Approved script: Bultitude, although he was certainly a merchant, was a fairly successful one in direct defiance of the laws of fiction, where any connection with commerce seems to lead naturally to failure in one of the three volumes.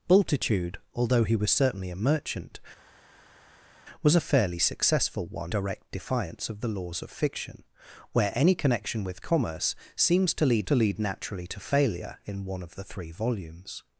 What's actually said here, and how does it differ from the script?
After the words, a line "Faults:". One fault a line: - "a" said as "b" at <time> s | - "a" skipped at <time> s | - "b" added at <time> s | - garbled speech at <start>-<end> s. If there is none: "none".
Bultitude, although he was certainly a merchant, was a fairly successful one direct defiance of the laws of fiction, where any connection with commerce seems to lead to lead naturally to failure in one of the three volumes.
Faults:
- "in" skipped at 5.5 s
- "to lead" added at 10.6 s